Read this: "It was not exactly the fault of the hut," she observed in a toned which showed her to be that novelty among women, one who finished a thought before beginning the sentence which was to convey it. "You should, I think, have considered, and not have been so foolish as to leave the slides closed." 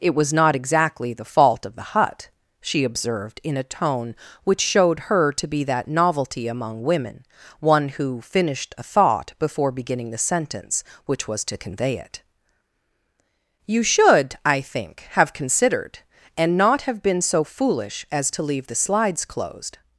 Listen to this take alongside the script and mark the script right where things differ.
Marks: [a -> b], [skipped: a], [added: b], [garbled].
"It was not exactly the fault of the hut," she observed in a [toned -> tone] which showed her to be that novelty among women, one who finished a thought before beginning the sentence which was to convey it. "You should, I think, have considered, and not have been so foolish as to leave the slides closed."